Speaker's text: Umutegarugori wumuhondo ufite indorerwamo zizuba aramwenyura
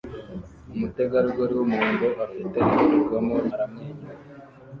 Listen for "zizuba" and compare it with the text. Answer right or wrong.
wrong